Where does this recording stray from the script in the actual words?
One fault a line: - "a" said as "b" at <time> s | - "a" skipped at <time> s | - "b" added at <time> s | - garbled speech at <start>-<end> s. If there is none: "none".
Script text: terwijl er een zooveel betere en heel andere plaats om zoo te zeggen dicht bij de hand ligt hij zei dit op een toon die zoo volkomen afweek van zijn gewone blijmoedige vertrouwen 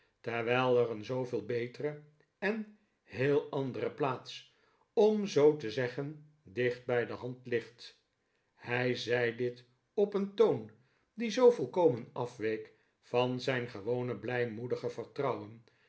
none